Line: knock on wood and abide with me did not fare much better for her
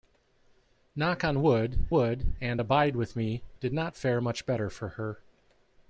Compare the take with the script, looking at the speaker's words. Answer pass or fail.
fail